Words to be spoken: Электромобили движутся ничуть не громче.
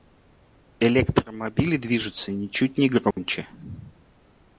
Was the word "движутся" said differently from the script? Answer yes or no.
no